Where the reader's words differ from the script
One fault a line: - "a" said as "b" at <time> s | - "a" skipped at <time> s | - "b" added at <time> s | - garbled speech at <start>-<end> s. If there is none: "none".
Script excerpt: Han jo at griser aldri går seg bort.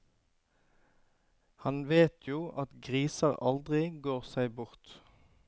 - "vet" added at 1.9 s